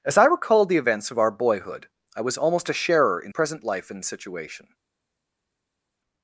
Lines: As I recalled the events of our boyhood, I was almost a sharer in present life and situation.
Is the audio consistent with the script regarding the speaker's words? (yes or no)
yes